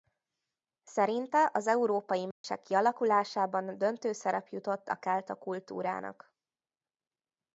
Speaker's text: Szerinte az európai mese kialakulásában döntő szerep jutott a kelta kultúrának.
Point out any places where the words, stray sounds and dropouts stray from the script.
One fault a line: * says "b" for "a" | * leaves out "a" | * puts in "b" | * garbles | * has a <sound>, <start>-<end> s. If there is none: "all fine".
* has a dropout, 2.3-2.4 s